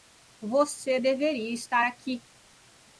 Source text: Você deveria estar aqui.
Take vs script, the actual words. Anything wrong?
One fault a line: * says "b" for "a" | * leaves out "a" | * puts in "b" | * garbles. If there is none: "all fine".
all fine